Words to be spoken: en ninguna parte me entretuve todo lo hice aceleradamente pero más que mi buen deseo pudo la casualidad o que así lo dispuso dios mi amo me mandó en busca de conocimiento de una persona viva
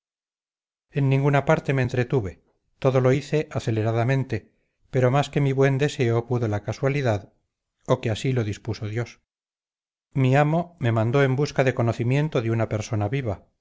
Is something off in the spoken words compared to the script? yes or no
no